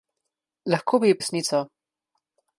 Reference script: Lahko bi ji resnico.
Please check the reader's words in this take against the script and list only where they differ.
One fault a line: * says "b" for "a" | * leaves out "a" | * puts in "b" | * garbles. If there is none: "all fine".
all fine